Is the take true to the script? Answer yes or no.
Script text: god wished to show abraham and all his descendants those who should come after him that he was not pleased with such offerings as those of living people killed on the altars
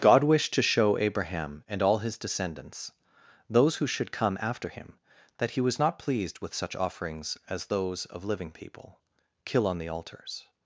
no